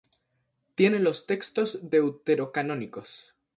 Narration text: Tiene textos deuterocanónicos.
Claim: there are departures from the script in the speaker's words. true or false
true